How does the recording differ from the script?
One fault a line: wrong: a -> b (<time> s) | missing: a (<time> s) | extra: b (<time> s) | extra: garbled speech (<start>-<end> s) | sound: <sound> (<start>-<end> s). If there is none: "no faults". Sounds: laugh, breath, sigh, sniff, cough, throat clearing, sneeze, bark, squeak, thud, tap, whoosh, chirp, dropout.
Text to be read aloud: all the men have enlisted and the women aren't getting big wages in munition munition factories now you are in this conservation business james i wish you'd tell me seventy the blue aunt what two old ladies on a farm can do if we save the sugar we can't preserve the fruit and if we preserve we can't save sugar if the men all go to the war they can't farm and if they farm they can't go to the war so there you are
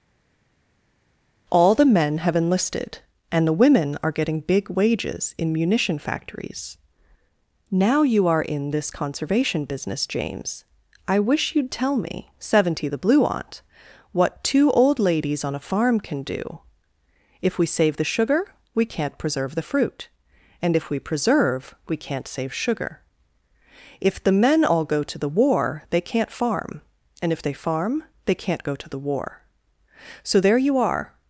wrong: aren't -> are (4.0 s)
missing: munition (6.0 s)